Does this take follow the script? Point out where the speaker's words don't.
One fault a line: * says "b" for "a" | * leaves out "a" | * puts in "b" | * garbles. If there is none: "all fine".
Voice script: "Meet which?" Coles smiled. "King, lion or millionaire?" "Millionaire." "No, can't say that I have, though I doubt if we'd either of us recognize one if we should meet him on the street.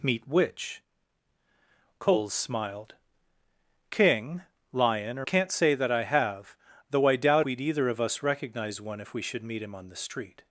* leaves out "millionaire Millionaire No"
* leaves out "if"